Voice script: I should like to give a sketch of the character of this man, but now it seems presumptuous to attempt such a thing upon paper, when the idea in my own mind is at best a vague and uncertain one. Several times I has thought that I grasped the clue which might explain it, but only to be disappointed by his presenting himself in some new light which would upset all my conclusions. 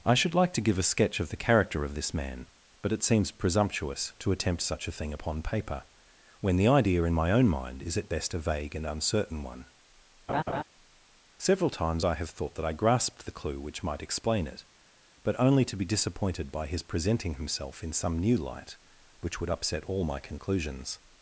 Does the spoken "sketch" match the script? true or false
true